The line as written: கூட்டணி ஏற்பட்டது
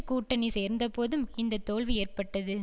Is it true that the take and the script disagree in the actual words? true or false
true